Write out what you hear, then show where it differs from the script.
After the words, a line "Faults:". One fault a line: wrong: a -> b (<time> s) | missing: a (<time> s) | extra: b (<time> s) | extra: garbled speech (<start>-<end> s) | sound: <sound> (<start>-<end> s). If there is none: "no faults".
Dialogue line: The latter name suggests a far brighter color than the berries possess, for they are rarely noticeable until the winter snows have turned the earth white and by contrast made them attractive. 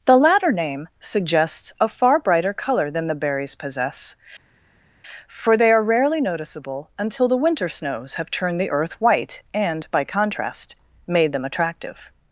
The latter name suggests a far brighter color than the berries possess, for they are rarely noticeable until the winter snows have turned the earth white and by contrast made them attractive.
Faults:
no faults